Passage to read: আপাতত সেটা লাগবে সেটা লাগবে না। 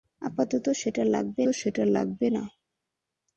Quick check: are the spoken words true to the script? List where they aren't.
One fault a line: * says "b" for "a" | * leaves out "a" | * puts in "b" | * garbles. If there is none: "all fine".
all fine